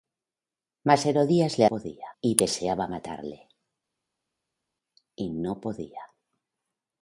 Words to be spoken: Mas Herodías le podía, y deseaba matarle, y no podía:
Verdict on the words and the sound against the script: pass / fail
pass